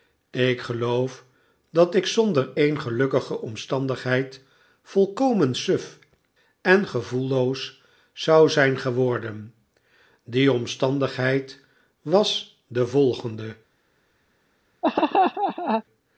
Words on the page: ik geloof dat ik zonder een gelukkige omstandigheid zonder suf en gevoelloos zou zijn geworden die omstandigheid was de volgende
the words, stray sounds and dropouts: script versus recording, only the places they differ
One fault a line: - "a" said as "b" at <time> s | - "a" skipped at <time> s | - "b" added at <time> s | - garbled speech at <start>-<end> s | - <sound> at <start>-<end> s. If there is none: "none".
- "zonder" said as "volkomen" at 4.8 s
- laugh at 14.8-15.8 s